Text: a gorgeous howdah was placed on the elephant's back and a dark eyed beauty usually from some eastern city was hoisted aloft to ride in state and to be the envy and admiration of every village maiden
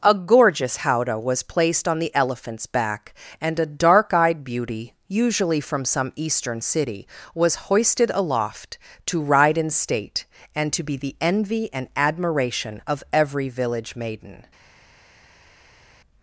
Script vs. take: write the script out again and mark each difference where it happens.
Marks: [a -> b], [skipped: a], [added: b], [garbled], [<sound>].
a gorgeous howdah was placed on the elephant's back and a dark eyed beauty usually from some eastern city was hoisted aloft to ride in state and to be the envy and admiration of every village maiden